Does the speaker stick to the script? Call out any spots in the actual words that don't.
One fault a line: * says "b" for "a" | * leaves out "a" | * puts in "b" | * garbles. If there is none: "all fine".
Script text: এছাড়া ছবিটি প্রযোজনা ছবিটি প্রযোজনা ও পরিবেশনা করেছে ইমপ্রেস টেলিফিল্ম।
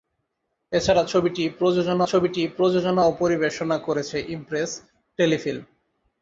all fine